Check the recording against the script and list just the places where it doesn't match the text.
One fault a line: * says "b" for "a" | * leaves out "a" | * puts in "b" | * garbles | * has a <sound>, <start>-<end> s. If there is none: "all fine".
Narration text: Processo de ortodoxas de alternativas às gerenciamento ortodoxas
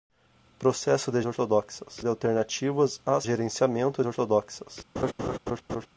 * has a laugh, 5.0-5.9 s